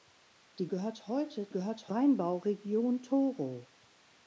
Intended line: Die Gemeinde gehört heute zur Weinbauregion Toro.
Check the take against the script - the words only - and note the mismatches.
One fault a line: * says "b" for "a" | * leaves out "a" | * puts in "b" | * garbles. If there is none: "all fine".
* leaves out "Gemeinde"
* says "gehört" for "zur"